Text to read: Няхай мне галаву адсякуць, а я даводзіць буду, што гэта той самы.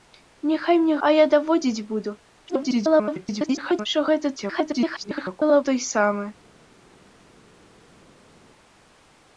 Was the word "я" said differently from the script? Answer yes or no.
no